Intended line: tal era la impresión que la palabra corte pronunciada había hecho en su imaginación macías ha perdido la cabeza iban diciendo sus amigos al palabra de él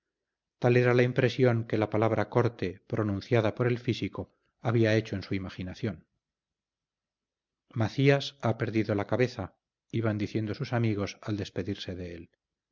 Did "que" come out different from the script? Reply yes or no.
no